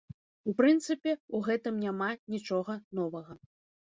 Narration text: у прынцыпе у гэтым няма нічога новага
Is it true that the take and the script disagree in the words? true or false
false